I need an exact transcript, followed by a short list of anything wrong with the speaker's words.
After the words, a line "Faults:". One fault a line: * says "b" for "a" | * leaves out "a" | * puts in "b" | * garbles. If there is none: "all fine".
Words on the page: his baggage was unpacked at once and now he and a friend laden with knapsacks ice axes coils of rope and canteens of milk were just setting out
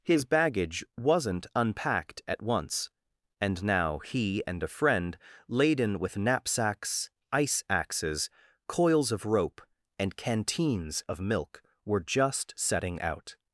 his baggage wasn't unpacked at once and now he and a friend laden with knapsacks ice axes coils of rope and canteens of milk were just setting out
Faults:
* says "wasn't" for "was"